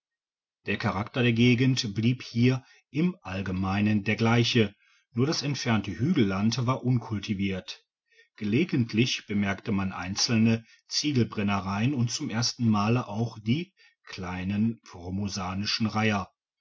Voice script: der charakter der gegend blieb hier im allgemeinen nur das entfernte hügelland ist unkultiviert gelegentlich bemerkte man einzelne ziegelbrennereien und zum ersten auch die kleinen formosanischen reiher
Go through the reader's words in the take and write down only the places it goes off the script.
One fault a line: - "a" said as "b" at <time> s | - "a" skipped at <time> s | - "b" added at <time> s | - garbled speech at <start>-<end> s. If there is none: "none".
- "der gleiche" added at 4.0 s
- "ist" said as "war" at 6.7 s
- "male" added at 12.7 s